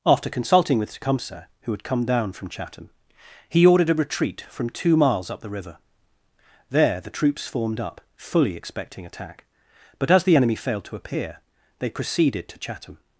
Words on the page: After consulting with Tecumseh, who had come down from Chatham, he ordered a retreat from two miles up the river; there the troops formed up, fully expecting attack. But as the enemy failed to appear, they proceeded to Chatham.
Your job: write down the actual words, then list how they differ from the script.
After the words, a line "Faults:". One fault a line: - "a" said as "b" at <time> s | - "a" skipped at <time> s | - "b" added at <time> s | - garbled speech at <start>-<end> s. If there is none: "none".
After consulting with Tecumseh, who had come down from Chatham, he ordered a retreat from two miles up the river; there the troops formed up, fully expecting attack. But as the enemy failed to appear, they proceeded to Chatham.
Faults:
none